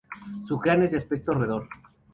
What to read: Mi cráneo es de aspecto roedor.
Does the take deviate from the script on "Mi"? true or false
true